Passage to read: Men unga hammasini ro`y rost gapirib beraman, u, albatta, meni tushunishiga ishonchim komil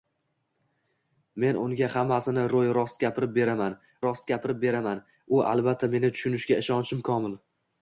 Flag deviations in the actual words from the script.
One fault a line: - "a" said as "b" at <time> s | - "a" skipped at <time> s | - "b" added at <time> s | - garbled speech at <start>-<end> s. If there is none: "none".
- "rost gapirib beraman" added at 4.1 s